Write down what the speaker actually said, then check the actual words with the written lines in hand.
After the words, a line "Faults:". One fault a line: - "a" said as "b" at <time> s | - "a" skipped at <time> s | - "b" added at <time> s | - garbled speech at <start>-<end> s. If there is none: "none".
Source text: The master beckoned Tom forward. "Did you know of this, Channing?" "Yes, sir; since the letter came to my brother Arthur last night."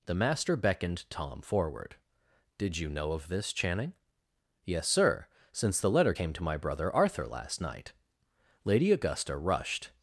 The master beckoned Tom forward. "Did you know of this, Channing?" "Yes, sir; since the letter came to my brother Arthur last night." Lady Augusta rushed
Faults:
- "Lady Augusta rushed" added at 8.6 s